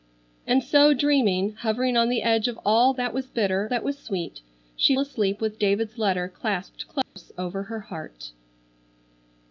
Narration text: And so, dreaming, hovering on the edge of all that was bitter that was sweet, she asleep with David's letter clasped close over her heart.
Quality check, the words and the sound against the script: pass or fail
fail